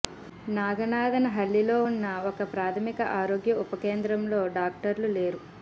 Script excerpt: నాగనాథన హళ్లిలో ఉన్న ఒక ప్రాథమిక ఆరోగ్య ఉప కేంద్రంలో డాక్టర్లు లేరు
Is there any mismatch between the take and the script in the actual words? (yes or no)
no